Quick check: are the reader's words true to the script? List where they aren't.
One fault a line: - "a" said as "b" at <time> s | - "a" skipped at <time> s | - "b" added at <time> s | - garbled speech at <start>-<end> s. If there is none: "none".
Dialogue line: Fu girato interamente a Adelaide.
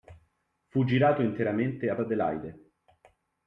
none